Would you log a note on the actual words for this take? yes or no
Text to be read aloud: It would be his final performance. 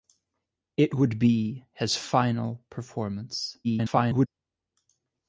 yes